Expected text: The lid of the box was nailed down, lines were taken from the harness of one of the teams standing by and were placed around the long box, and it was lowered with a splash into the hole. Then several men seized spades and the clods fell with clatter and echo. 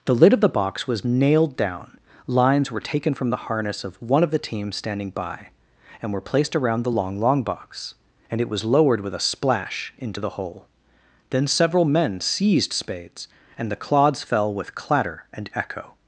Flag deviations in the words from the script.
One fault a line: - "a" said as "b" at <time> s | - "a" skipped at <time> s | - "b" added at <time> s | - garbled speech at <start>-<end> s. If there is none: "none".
- "long" added at 7.2 s